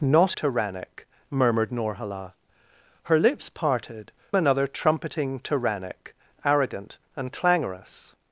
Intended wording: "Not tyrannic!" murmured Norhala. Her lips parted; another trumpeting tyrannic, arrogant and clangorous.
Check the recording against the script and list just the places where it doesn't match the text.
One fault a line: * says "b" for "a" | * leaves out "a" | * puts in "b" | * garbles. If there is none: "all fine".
all fine